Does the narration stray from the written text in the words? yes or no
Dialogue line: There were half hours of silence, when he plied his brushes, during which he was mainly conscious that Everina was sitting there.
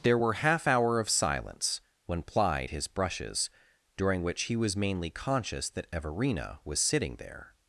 yes